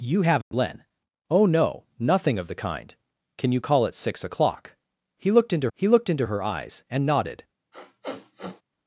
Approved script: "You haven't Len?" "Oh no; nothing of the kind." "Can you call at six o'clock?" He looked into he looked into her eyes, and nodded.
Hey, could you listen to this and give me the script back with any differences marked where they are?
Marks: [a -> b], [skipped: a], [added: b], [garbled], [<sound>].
"You haven't [dropout] Len?" "Oh no; nothing of the kind." "Can you call at six o'clock?" He looked into he looked into her eyes, and nodded. [sniff]